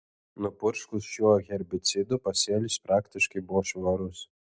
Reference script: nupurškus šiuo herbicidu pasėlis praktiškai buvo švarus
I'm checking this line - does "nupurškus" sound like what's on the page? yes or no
yes